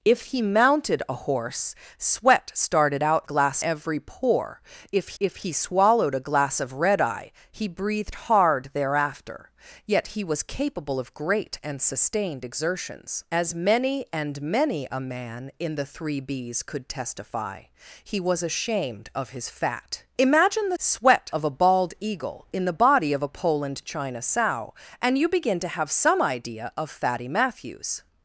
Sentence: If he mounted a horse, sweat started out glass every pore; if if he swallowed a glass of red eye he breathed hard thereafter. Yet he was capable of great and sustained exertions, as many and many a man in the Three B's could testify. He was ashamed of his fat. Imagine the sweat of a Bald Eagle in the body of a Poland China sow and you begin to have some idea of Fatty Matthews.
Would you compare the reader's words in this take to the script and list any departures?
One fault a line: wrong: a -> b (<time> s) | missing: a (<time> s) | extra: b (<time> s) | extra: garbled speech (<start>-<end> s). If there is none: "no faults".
no faults